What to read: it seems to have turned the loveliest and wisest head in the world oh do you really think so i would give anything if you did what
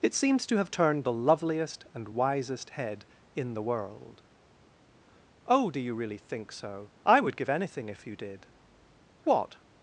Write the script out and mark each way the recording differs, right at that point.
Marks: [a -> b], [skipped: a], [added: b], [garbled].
it seems to have turned the loveliest and wisest head in the world oh do you really think so i would give anything if you did what